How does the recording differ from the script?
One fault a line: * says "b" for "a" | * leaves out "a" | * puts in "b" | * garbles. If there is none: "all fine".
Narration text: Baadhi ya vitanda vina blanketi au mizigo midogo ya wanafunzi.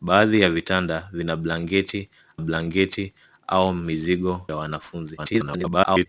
* puts in "blanketi"
* leaves out "midogo"
* garbles